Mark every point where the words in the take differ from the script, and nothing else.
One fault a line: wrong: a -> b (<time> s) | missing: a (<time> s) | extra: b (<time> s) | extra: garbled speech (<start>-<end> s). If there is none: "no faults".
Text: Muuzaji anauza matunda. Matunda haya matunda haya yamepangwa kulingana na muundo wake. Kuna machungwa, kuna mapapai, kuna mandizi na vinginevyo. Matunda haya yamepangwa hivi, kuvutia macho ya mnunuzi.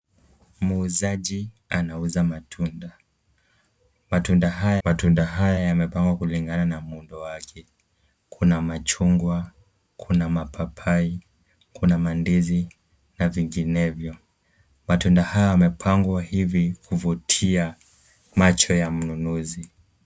no faults